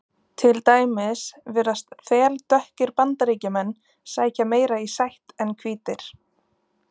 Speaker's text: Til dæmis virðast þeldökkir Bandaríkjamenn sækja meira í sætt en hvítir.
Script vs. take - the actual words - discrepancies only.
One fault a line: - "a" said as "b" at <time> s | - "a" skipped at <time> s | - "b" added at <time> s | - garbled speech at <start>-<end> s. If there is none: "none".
none